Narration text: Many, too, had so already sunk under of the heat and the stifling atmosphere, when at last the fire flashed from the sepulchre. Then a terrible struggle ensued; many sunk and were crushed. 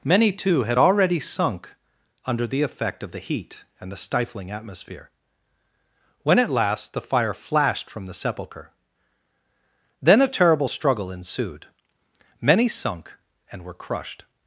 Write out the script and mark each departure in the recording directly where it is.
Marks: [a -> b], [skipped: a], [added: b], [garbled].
Many, too, had [skipped: so] already sunk under [added: the effect] of the heat and the stifling atmosphere, when at last the fire flashed from the sepulchre. Then a terrible struggle ensued; many sunk and were crushed.